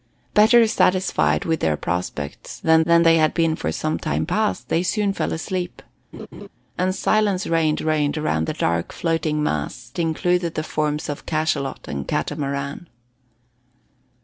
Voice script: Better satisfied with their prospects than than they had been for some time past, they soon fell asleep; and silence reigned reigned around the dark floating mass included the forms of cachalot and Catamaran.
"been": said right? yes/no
yes